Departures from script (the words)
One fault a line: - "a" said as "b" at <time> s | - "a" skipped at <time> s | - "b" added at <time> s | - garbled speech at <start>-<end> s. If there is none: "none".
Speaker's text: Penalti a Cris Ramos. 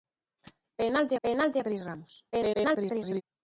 - "penalti" added at 1.2 s
- garbled speech at 2.3-3.2 s